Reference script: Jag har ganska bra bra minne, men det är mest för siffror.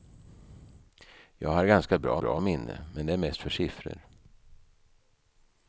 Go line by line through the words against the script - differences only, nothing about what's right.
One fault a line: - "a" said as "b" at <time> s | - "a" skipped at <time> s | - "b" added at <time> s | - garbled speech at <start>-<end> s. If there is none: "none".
none